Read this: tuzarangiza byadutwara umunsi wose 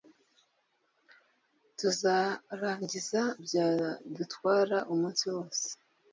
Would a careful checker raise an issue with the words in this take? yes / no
no